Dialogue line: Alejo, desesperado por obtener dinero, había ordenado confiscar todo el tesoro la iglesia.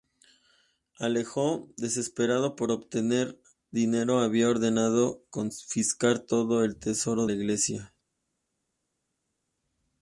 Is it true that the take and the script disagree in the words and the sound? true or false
false